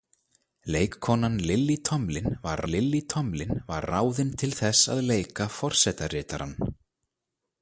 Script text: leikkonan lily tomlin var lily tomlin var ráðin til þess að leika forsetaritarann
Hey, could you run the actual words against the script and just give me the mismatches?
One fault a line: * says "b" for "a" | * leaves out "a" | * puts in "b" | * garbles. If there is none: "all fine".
all fine